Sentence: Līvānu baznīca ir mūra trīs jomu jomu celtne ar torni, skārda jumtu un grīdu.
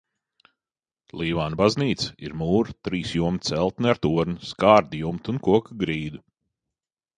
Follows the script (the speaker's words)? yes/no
no